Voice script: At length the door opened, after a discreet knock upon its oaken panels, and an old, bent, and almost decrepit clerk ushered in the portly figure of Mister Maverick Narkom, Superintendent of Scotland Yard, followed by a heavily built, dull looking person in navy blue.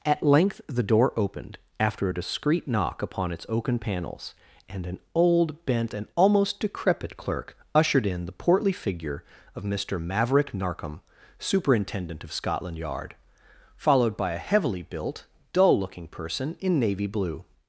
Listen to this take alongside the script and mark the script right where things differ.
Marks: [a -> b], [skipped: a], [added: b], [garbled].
At length the door opened, after a discreet knock upon its oaken panels, and an old, bent, and almost decrepit clerk ushered in the portly figure of Mister Maverick Narkom, Superintendent of Scotland Yard, followed by a heavily built, dull looking person in navy blue.